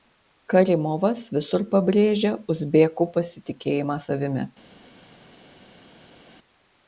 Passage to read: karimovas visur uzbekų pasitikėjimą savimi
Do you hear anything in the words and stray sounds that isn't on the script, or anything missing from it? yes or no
yes